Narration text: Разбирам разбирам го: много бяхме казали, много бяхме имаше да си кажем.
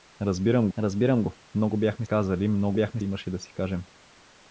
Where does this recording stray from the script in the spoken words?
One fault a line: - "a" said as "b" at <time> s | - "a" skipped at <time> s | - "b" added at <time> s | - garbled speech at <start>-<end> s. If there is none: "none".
none